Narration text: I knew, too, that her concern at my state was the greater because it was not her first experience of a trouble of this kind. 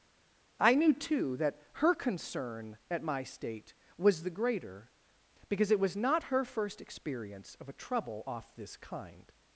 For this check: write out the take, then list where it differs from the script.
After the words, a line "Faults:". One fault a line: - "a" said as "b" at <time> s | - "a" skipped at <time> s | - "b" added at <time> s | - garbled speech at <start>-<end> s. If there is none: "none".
I knew, too, that her concern at my state was the greater because it was not her first experience of a trouble off this kind.
Faults:
- "of" said as "off" at 8.3 s